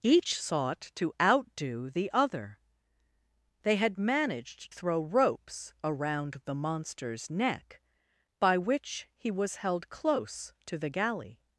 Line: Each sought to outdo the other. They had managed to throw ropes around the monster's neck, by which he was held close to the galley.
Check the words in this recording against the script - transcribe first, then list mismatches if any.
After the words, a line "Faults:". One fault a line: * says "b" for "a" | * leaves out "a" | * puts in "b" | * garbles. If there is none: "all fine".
Each sought to outdo the other. They had managed throw ropes around the monster's neck, by which he was held close to the galley.
Faults:
* leaves out "to"